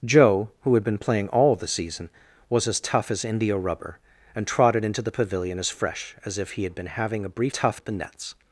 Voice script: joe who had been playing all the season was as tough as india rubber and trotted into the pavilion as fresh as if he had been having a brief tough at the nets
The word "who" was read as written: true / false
true